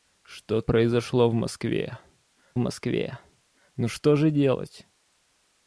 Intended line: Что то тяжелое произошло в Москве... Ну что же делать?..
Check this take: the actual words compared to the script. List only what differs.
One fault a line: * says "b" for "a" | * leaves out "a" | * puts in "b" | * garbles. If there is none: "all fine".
* leaves out "то тяжелое"
* puts in "Москве"